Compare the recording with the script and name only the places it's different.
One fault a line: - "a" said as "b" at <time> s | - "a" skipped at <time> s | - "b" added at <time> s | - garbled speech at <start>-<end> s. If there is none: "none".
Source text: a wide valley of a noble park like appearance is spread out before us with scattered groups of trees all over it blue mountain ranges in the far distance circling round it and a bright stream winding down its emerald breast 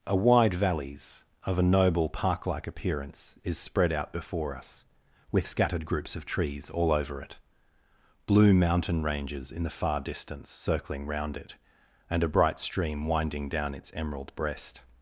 - "valley" said as "valleys" at 0.5 s